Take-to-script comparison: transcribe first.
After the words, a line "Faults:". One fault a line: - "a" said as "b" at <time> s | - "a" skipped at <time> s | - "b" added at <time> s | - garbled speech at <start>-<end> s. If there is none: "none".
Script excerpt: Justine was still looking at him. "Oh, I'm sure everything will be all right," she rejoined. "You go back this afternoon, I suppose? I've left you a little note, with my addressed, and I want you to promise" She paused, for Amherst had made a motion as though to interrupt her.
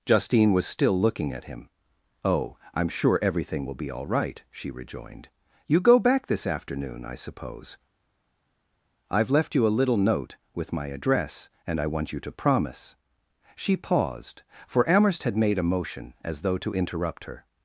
Justine was still looking at him. "Oh, I'm sure everything will be all right," she rejoined. "You go back this afternoon, I suppose? I've left you a little note, with my address, and I want you to promise" She paused, for Amherst had made a motion as though to interrupt her.
Faults:
- "addressed" said as "address" at 10.9 s